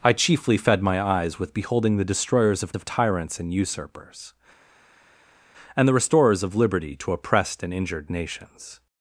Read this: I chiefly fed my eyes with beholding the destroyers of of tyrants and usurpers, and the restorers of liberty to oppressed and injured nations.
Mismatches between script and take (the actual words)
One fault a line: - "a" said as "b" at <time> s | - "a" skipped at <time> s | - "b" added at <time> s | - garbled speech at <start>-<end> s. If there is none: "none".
none